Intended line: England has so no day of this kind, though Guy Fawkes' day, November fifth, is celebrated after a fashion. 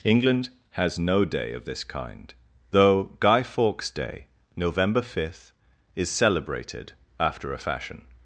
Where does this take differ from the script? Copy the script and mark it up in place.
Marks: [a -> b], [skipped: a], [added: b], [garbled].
England has [skipped: so] no day of this kind, though Guy Fawkes' day, November fifth, is celebrated after a fashion.